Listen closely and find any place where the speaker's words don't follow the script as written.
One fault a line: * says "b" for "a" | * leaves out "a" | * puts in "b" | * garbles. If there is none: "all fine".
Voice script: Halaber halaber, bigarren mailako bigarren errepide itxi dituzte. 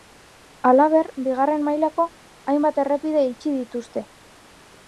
* leaves out "halaber"
* says "hainbat" for "bigarren"